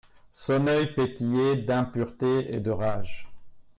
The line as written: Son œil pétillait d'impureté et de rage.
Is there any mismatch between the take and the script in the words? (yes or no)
no